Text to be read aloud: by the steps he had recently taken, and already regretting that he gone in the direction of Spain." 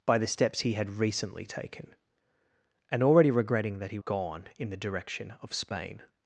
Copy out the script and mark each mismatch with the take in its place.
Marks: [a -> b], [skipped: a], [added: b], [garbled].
by the steps he had recently taken, and already regretting that he gone in the direction of Spain."